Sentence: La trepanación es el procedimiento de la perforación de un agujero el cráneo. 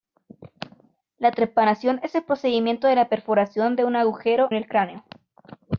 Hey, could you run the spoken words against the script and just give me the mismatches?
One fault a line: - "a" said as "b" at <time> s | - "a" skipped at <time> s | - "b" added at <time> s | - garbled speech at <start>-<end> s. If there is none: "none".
none